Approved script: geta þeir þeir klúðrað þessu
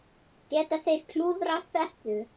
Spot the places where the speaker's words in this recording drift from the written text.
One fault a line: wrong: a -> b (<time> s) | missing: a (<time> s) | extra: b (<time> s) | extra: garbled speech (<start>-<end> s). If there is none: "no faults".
missing: þeir (1.1 s)